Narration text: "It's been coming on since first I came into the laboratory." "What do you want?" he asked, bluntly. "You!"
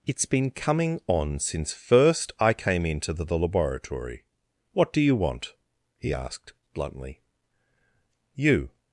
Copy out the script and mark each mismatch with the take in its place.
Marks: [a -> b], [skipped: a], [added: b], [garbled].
"It's been coming on since first I came into the [added: the] laboratory." "What do you want?" he asked, bluntly. "You!"